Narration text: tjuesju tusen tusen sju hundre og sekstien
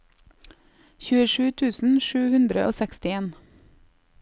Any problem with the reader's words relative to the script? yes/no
yes